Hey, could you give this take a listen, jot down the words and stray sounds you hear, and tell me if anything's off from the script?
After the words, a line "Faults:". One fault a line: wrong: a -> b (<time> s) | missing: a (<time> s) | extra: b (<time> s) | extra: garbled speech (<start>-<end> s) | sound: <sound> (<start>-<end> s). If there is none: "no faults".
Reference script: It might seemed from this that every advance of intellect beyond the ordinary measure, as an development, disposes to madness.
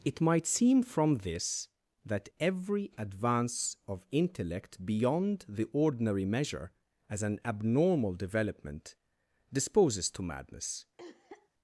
It might seem from this that every advance of intellect beyond the ordinary measure, as an abnormal development, disposes to madness.
Faults:
wrong: seemed -> seem (0.5 s)
extra: abnormal (7.4 s)
sound: cough (11.0-11.5 s)